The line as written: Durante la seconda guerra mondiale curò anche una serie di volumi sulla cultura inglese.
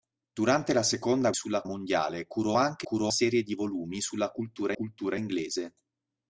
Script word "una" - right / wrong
wrong